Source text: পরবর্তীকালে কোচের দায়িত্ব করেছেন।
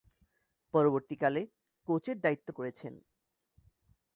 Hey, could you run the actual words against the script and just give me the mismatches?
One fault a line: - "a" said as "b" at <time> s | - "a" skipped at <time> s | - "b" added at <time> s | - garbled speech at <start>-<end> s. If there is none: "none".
none